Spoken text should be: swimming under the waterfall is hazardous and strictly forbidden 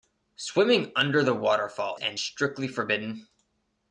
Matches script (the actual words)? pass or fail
fail